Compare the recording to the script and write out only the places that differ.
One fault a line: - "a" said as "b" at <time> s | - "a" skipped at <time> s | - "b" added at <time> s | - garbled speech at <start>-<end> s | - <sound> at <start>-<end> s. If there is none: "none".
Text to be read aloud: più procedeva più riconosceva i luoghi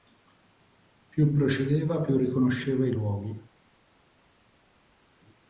none